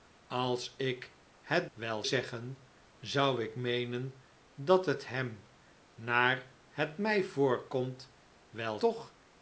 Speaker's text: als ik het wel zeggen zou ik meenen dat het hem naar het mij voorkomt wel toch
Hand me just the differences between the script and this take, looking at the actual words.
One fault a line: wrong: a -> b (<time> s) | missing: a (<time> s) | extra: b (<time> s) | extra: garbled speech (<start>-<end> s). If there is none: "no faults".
no faults